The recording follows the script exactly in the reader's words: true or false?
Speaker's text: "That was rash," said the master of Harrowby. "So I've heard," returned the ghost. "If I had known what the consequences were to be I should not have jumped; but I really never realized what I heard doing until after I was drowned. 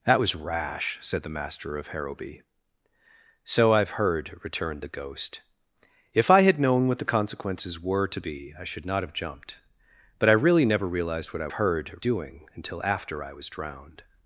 true